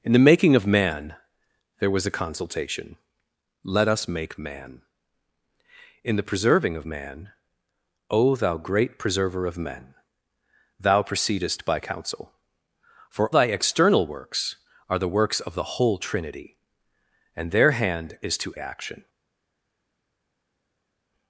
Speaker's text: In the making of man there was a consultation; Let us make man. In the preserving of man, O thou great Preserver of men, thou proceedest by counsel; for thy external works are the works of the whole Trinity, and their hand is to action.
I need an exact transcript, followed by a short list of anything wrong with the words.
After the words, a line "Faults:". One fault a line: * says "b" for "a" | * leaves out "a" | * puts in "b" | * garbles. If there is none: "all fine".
In the making of man there was a consultation; Let us make man. In the preserving of man, O thou great Preserver of men, thou proceedest by counsel; for thy external works are the works of the whole Trinity, and their hand is to action.
Faults:
all fine